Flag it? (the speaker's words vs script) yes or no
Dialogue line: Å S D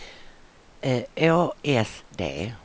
no